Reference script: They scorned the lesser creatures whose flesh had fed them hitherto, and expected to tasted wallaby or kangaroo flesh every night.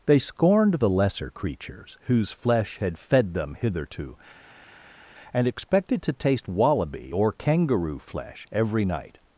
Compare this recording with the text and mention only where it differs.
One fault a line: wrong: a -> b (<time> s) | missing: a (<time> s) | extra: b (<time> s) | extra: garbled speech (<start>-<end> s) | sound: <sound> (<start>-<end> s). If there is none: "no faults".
wrong: tasted -> taste (6.1 s)